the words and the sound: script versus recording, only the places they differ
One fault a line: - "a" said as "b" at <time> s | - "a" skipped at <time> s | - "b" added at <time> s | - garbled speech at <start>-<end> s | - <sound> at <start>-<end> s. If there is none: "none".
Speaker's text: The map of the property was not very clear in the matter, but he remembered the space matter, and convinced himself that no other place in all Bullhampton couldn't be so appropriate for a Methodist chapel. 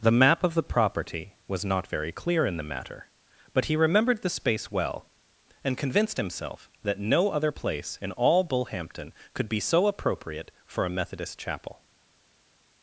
- "matter" said as "well" at 4.7 s
- "couldn't" said as "could" at 9.3 s